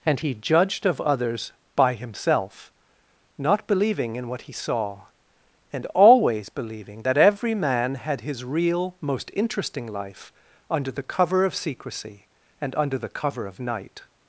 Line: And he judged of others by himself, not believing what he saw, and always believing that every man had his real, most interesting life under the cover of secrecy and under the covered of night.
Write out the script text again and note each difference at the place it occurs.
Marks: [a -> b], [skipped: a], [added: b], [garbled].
And he judged of others by himself, not believing [added: in] what he saw, and always believing that every man had his real, most interesting life under the cover of secrecy and under the [covered -> cover] of night.